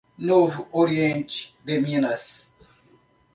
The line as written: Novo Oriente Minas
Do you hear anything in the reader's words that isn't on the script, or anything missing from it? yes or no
yes